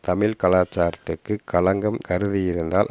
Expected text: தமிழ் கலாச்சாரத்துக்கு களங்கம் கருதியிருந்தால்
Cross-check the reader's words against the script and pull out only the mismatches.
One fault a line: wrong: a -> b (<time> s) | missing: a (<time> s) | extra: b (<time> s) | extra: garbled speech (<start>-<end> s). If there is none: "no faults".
no faults